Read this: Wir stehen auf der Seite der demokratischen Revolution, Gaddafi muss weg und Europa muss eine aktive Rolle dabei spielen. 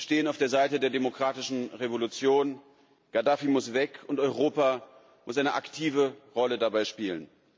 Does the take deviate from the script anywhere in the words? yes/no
no